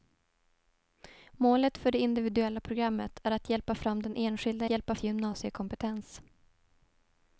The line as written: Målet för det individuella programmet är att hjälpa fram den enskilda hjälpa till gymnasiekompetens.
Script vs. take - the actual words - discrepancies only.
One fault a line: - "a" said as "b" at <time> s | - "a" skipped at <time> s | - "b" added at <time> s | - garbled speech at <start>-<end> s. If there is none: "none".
none